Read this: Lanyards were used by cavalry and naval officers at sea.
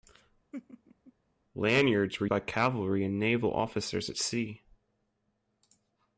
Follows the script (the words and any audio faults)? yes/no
no